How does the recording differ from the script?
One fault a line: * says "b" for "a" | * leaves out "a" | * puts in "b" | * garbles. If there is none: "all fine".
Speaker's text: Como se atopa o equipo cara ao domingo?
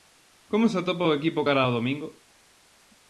all fine